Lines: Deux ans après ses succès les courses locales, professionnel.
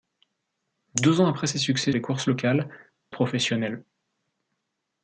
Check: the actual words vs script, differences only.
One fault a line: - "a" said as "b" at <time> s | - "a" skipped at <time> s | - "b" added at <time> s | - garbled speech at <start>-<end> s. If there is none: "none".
none